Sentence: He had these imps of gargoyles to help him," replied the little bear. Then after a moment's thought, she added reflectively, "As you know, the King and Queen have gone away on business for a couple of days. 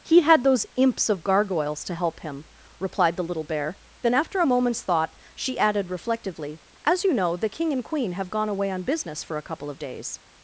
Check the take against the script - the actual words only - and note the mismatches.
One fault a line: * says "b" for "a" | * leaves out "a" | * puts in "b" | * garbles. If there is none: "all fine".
* says "those" for "these"